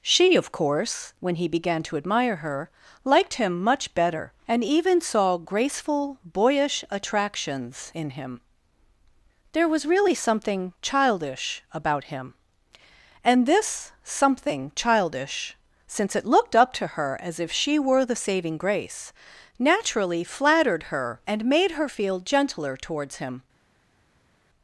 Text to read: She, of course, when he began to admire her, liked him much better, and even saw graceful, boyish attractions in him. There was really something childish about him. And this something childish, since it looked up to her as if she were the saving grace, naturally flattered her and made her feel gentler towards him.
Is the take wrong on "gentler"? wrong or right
right